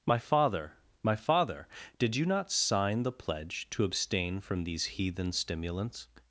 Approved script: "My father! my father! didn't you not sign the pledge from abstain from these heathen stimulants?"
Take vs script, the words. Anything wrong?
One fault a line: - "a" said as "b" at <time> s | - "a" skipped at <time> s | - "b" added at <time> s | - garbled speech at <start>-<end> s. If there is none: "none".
- "didn't" said as "did" at 2.0 s
- "from" said as "to" at 3.7 s